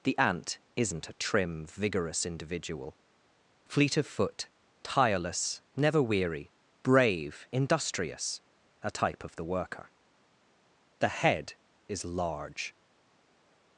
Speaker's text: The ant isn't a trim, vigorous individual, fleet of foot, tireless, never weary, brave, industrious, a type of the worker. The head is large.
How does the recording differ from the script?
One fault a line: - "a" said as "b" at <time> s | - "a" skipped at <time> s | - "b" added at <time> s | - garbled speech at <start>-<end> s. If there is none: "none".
none